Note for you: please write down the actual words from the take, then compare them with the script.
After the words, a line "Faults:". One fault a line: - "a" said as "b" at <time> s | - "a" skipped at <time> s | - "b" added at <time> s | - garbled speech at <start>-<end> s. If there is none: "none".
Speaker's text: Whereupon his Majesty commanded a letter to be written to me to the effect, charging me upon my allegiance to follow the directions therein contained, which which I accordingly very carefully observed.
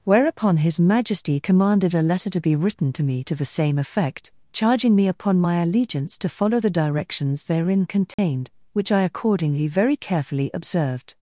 Whereupon his Majesty commanded a letter to be written to me to the same effect, charging me upon my allegiance to follow the directions therein contained, which I accordingly very carefully observed.
Faults:
- "same" added at 3.5 s
- "which" skipped at 8.9 s